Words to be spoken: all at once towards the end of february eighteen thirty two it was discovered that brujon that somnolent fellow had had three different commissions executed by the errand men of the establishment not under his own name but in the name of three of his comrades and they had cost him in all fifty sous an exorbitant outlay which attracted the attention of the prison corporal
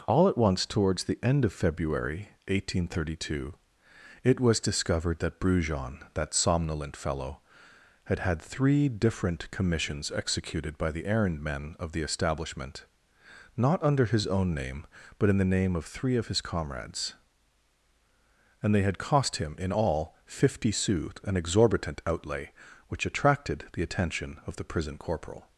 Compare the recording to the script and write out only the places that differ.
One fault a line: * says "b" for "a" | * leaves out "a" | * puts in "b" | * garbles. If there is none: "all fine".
all fine